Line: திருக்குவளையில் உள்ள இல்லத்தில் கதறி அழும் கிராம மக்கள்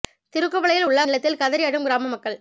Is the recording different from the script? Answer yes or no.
no